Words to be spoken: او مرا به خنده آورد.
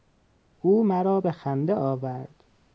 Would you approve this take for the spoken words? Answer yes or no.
yes